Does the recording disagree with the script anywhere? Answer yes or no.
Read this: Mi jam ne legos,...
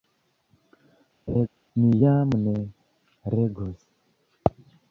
no